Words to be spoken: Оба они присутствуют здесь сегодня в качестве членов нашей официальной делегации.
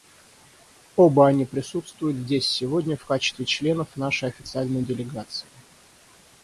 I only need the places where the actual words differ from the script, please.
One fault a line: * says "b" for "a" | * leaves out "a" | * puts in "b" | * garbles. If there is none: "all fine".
all fine